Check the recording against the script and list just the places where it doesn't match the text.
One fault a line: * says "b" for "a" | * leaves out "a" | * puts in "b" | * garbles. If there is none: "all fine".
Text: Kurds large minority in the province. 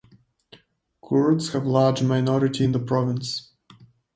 * puts in "have"